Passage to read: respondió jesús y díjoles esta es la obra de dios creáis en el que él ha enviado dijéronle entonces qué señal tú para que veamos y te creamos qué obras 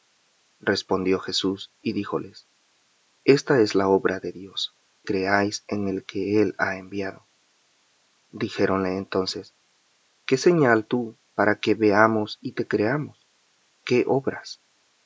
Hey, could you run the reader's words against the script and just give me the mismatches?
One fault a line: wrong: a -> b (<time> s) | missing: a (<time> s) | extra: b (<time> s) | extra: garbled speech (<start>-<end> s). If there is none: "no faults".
no faults